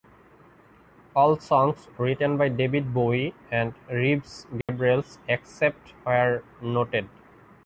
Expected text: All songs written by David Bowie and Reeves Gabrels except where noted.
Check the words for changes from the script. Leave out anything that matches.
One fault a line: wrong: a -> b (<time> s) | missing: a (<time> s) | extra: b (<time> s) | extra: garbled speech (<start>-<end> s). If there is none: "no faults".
no faults